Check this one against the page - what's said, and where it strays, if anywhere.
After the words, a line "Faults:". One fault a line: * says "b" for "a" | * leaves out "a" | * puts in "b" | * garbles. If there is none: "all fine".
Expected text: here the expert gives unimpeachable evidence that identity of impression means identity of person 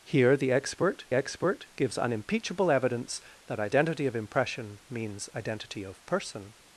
here the expert expert gives unimpeachable evidence that identity of impression means identity of person
Faults:
* puts in "expert"